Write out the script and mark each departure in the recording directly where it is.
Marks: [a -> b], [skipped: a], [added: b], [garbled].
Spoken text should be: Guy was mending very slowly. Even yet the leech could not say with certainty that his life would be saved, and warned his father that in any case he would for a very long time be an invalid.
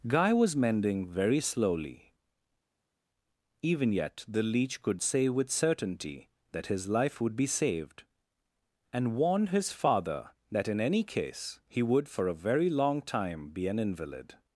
Guy was mending very slowly. Even yet the leech could [skipped: not] say with certainty that his life would be saved, and warned his father that in any case he would for a very long time be an invalid.